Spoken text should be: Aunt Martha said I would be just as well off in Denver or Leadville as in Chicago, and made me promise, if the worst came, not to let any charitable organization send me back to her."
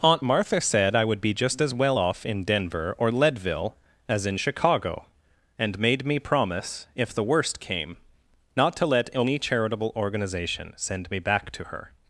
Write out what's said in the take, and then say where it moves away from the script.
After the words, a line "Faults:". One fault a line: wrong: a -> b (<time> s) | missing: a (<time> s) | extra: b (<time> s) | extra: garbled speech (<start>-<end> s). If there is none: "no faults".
Aunt Martha said I would be just as well off in Denver or Leadville as in Chicago, and made me promise, if the worst came, not to let any charitable organization send me back to her."
Faults:
no faults